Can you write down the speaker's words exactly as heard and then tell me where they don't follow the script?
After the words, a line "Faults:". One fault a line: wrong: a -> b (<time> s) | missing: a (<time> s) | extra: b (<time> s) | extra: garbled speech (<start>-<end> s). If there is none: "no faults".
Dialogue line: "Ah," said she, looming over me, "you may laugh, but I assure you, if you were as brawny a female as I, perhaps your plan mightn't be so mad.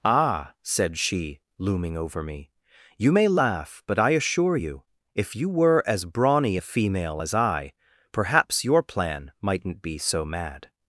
"Ah," said she, looming over me, "you may laugh, but I assure you, if you were as brawny a female as I, perhaps your plan mightn't be so mad.
Faults:
no faults